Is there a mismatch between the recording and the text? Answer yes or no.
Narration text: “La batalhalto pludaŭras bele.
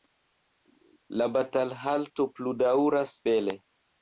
no